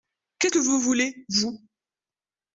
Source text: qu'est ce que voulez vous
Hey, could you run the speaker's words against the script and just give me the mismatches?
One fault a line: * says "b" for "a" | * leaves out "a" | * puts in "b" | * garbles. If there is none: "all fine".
* puts in "vous"